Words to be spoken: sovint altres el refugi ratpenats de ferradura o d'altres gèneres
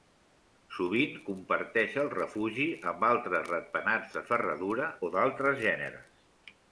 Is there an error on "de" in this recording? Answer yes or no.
no